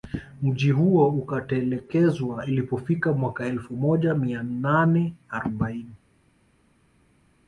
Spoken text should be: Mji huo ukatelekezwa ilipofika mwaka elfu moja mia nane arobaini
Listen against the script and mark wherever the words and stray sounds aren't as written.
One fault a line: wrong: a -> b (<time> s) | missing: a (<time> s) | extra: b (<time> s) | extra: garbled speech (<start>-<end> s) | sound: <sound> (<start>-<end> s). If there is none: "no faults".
no faults